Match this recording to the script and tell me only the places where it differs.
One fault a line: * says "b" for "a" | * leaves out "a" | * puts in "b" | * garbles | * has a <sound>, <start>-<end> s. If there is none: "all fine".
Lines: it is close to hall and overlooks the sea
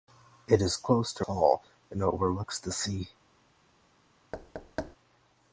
* has a thud, 4.3-5.0 s